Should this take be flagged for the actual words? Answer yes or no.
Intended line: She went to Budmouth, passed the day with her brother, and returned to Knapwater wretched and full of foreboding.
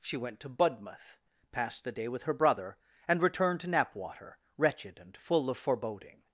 no